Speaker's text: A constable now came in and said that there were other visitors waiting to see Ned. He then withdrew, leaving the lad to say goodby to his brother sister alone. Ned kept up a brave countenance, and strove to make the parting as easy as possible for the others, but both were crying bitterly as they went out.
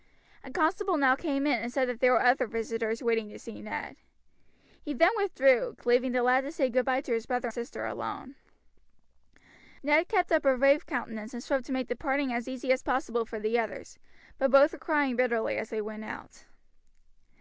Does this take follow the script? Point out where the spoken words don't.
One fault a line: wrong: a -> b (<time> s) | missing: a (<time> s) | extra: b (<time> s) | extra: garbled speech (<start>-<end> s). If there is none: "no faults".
no faults